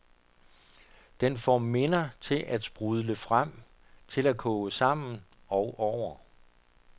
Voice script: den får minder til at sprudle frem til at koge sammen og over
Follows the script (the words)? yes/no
yes